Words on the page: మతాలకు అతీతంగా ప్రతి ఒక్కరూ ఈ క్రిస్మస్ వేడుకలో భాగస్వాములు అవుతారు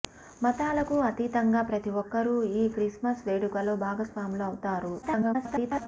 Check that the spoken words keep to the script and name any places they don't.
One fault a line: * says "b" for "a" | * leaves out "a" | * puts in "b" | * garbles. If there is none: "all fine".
* garbles